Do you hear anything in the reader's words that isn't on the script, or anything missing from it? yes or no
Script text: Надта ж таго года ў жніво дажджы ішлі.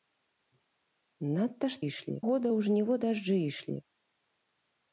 yes